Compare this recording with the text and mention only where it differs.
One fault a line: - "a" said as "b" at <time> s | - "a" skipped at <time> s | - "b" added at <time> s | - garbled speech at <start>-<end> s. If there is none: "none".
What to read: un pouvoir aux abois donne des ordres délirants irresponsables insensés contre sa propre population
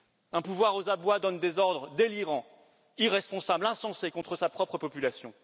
none